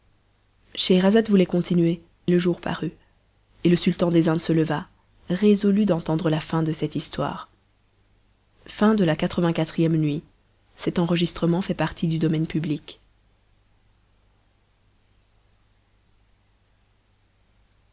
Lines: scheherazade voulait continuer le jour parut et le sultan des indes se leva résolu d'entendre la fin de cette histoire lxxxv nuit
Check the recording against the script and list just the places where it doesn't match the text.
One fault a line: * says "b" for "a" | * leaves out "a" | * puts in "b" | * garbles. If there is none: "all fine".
all fine